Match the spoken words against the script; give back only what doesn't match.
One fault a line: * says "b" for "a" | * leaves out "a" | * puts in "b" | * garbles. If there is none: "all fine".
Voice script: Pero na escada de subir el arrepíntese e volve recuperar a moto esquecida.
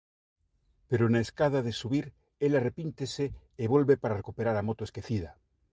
* puts in "para"